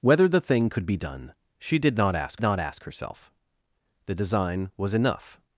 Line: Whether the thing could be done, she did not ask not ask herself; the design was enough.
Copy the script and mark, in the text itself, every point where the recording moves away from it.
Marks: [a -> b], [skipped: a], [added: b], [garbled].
Whether the thing could be done, she did not ask not ask herself; the design was enough.